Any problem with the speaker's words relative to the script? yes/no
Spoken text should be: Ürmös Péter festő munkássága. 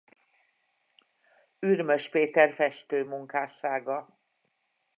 no